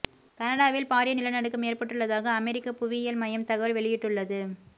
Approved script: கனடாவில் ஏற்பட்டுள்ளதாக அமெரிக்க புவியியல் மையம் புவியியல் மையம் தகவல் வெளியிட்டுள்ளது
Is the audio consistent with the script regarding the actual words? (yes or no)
no